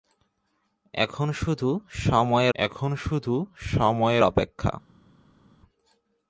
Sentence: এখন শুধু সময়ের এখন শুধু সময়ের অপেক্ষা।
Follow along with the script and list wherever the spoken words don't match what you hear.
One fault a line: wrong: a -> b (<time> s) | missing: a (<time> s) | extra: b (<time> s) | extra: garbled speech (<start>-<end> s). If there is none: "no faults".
no faults